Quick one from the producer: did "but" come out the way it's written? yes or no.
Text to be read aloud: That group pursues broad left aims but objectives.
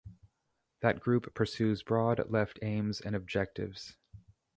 no